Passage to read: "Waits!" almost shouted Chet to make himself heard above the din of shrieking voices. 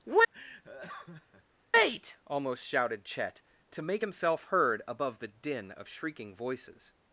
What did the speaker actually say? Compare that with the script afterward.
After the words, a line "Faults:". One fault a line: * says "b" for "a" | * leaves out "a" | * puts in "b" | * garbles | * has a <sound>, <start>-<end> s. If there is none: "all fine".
"Wait!" almost shouted Chet to make himself heard above the din of shrieking voices.
Faults:
* has a laugh, 0.3-1.4 s
* says "Wait" for "Waits"